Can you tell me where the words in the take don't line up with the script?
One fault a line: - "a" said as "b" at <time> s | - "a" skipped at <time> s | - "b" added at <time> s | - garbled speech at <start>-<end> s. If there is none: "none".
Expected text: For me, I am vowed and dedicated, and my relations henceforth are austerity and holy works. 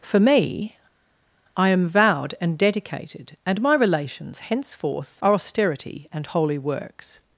none